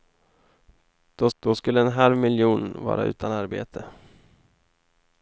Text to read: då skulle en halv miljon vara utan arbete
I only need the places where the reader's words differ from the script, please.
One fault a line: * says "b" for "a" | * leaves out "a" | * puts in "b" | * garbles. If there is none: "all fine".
* puts in "då"